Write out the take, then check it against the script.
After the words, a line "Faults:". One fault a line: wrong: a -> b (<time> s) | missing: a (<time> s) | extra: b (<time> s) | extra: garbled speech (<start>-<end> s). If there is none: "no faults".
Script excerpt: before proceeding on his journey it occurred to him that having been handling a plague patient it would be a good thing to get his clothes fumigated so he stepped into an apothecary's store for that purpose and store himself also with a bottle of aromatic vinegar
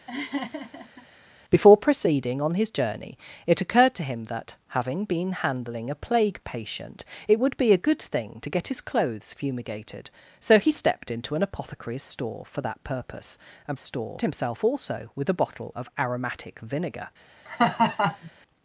before proceeding on his journey it occurred to him that having been handling a plague patient it would be a good thing to get his clothes fumigated so he stepped into an apothecary's store for that purpose and store himself also with a bottle of aromatic vinegar
Faults:
no faults